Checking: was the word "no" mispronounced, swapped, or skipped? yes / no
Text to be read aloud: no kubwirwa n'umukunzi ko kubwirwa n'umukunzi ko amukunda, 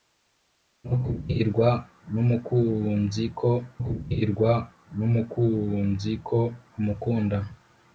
no